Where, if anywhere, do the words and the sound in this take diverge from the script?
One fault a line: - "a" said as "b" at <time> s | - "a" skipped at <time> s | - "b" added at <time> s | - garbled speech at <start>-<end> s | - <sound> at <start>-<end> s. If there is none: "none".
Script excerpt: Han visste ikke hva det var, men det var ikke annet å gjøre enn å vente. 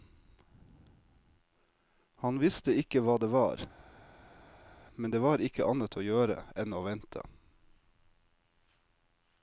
none